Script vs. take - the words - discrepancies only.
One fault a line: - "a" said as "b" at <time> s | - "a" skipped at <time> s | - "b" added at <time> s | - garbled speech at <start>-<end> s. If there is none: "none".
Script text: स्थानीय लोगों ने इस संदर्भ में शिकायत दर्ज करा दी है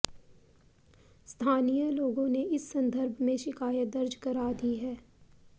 none